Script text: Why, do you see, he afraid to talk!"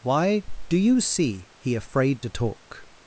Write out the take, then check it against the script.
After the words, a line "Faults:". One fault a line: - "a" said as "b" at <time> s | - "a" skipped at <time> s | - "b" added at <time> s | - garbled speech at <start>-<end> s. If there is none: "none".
Why, do you see, he afraid to talk!"
Faults:
none